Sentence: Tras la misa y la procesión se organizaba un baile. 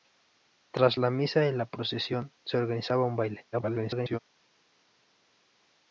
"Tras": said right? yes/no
yes